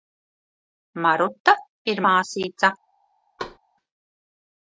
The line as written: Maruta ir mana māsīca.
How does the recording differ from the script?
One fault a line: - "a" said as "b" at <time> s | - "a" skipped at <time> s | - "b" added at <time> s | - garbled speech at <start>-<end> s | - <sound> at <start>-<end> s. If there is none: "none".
- "mana" skipped at 2.0 s
- thud at 3.4-3.6 s